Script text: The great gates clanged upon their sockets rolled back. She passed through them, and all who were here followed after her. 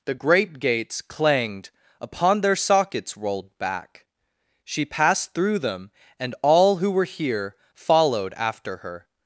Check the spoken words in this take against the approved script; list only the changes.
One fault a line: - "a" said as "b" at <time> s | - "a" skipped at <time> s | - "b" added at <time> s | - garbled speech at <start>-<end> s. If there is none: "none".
none